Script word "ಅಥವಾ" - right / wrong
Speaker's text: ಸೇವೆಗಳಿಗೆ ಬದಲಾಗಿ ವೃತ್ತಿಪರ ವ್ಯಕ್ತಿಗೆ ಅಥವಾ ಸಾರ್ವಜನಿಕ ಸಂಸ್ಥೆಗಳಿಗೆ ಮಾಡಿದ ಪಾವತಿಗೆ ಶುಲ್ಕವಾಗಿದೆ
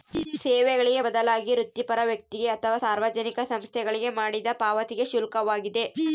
right